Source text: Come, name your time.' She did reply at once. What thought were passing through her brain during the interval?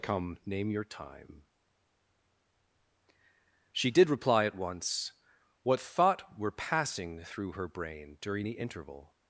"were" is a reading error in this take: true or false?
false